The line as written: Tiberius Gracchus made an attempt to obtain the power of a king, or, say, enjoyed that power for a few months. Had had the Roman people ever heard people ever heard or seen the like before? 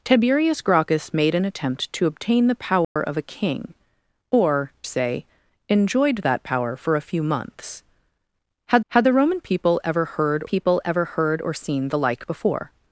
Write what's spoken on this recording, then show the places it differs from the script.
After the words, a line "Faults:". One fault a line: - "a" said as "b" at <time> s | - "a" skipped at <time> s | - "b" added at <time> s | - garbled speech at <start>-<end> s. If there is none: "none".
Tiberius Gracchus made an attempt to obtain the power of a king, or, say, enjoyed that power for a few months. Had had the Roman people ever heard people ever heard or seen the like before?
Faults:
none